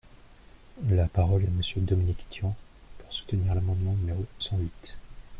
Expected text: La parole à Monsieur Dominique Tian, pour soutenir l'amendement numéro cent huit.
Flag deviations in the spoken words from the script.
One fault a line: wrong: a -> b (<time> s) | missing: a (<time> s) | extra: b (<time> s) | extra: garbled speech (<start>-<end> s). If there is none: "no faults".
no faults